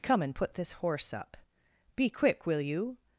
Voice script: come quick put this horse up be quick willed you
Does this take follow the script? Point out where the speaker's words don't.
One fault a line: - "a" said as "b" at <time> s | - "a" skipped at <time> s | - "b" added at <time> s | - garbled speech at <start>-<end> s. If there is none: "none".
- "quick" said as "and" at 0.2 s
- "willed" said as "will" at 2.5 s